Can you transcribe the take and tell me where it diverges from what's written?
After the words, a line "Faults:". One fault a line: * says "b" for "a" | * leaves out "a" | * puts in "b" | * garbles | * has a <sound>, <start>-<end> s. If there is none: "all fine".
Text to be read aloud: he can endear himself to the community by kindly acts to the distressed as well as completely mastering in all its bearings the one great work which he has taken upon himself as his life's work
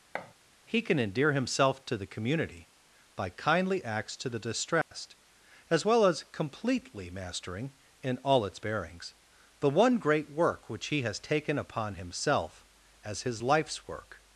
he can endear himself to the community by kindly acts to the distressed as well as completely mastering in all its bearings the one great work which he has taken upon himself as his life's work
Faults:
* has a thud, 0.1-0.3 s
* has a dropout, 4.8-4.9 s